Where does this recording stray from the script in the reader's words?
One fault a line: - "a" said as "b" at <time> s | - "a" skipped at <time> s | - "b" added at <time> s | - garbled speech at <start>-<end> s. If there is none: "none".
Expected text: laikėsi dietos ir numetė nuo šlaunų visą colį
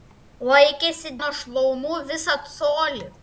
- "dietos ir numetė" skipped at 1.1 s